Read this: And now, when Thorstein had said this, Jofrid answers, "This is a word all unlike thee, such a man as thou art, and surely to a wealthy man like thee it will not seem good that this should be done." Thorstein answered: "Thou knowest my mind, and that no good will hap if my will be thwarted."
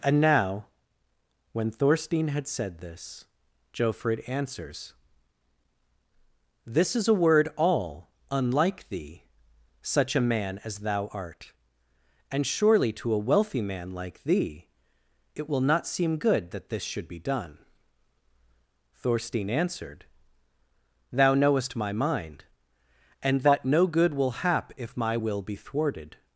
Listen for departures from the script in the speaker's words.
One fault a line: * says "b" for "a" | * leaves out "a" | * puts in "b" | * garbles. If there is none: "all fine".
all fine